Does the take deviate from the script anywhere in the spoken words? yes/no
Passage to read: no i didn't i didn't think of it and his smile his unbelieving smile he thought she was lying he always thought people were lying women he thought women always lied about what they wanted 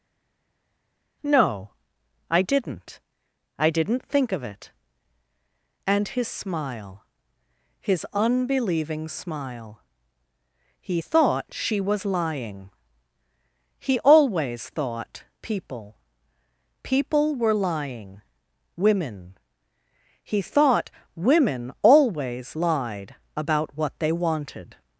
yes